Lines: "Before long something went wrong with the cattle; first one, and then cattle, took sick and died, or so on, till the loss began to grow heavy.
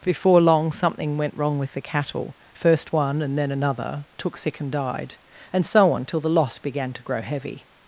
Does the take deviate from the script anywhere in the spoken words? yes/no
yes